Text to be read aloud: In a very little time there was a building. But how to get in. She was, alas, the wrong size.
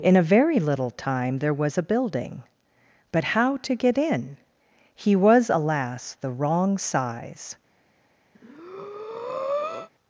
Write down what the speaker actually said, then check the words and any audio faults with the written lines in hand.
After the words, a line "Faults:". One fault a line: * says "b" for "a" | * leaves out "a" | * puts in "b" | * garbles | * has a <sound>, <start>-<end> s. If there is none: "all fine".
In a very little time there was a building. But how to get in. He was, alas, the wrong size.
Faults:
* says "He" for "She"
* has a breath, 8.3-9.9 s